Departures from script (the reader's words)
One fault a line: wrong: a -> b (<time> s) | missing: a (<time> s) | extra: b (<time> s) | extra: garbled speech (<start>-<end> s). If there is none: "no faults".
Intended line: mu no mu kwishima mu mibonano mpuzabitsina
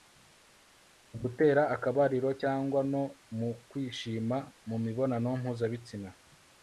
extra: gutera akabariro cyangwa (1.2 s)